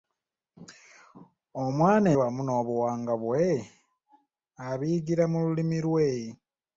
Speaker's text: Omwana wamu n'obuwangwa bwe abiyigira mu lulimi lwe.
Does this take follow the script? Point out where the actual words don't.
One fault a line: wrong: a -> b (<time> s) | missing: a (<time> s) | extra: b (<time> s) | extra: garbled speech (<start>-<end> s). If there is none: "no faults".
no faults